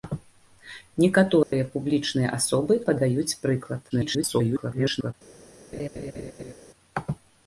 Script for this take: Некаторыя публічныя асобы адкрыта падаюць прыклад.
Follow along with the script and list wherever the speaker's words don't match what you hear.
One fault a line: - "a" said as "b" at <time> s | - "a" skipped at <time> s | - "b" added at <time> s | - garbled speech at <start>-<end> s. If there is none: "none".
- "адкрыта" skipped at 2.8 s
- garbled speech at 3.9-5.1 s